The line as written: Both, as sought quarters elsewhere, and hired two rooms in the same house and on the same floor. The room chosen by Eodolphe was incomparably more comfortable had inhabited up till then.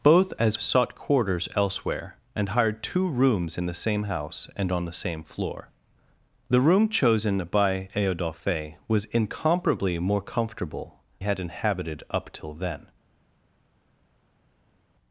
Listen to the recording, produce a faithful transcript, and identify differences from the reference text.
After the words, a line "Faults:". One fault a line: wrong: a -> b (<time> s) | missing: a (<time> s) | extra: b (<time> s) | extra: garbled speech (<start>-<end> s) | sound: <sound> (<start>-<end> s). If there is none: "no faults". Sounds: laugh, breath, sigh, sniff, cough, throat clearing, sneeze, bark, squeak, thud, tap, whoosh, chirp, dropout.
Both, as sought quarters elsewhere, and hired two rooms in the same house and on the same floor. The room chosen by Eodolphe was incomparably more comfortable had inhabited up till then.
Faults:
no faults